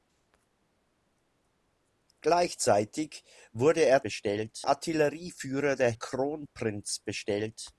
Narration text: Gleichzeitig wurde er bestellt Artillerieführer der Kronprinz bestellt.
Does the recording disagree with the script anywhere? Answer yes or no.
no